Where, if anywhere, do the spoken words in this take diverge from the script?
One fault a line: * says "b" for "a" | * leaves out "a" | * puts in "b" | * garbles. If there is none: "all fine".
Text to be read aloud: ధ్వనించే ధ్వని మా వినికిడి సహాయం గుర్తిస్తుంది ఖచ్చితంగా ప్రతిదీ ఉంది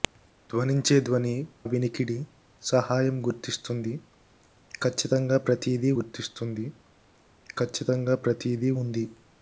* leaves out "మా"
* puts in "గుర్తిస్తుంది ఖచ్చితంగా ప్రతిదీ"